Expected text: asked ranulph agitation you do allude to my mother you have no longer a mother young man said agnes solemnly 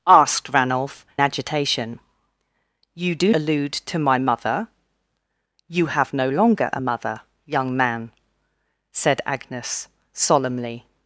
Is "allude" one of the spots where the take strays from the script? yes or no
no